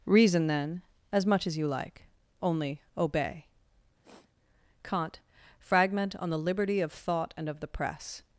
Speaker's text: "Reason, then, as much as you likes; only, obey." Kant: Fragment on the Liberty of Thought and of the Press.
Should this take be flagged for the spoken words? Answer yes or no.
yes